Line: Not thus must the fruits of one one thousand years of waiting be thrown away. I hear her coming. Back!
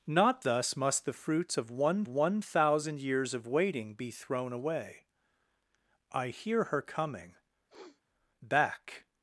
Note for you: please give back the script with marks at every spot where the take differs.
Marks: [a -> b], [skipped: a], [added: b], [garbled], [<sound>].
Not thus must the fruits of one one thousand years of waiting be thrown away. I hear her coming. [sniff] Back!